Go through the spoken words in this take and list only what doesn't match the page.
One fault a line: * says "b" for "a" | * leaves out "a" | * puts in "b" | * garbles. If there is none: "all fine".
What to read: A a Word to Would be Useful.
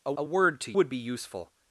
all fine